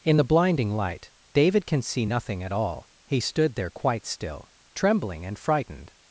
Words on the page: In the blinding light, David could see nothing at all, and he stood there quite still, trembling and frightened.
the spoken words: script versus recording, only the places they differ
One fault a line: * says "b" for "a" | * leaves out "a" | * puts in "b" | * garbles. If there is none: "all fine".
* says "can" for "could"
* leaves out "and"